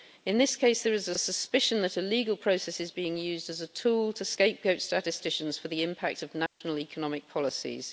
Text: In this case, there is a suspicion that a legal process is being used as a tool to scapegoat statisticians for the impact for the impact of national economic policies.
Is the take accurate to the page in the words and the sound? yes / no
no